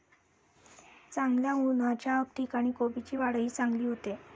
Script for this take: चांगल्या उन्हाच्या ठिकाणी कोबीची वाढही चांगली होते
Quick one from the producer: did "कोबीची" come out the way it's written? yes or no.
yes